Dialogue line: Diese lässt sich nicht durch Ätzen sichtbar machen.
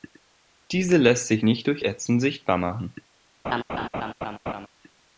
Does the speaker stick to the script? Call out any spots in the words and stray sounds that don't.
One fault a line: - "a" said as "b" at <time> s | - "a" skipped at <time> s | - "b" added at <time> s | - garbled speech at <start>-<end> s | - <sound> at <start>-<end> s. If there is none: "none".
- laugh at 3.4-4.7 s